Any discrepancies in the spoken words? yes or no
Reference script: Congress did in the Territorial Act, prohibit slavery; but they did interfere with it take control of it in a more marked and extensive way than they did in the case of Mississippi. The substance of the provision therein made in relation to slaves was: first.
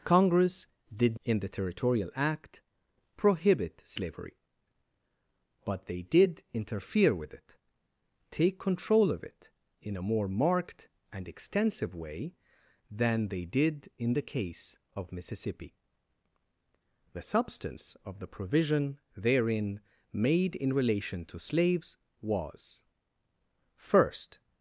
no